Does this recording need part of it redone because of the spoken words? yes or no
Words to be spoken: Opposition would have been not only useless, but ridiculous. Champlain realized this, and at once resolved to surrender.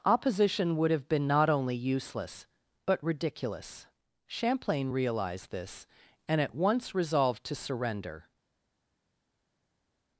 no